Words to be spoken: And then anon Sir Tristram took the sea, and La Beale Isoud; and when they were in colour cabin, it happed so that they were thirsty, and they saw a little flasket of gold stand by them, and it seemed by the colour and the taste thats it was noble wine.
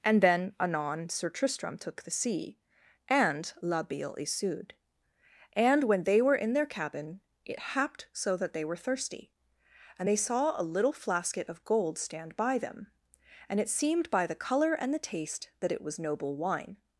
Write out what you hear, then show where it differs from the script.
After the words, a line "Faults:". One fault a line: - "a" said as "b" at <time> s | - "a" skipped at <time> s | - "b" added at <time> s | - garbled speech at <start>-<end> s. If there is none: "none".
And then anon Sir Tristram took the sea, and La Beale Isoud; and when they were in their cabin, it happed so that they were thirsty, and they saw a little flasket of gold stand by them, and it seemed by the colour and the taste that it was noble wine.
Faults:
- "colour" said as "their" at 6.5 s
- "thats" said as "that" at 15.6 s